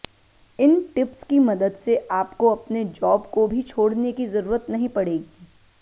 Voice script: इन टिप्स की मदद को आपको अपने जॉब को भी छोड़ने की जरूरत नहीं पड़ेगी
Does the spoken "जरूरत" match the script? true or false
true